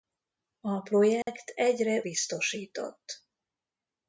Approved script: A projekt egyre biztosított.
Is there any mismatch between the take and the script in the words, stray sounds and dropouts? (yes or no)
yes